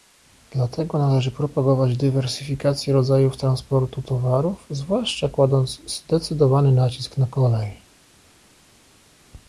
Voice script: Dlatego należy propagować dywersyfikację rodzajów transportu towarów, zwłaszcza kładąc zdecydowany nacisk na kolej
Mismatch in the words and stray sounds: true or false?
false